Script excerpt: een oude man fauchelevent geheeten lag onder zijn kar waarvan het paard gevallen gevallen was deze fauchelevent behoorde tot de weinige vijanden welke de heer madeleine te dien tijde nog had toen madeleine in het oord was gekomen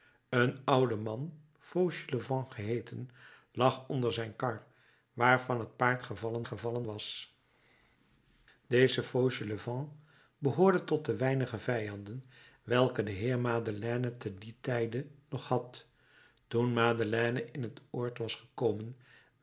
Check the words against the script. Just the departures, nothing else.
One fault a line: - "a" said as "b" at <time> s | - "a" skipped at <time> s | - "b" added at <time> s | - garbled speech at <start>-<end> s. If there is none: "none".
none